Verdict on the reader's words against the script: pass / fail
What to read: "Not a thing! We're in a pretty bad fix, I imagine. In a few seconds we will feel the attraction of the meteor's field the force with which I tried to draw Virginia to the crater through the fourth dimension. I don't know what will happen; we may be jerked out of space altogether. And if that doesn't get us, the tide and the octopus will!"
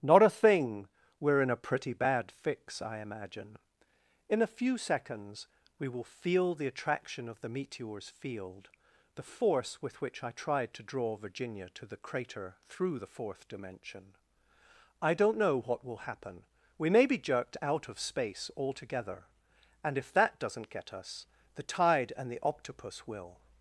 pass